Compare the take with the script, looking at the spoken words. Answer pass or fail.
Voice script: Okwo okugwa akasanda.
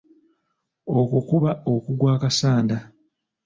fail